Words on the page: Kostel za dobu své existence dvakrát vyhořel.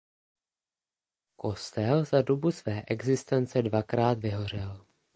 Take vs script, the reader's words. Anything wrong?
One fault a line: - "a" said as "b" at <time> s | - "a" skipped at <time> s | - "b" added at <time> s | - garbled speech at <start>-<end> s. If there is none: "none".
none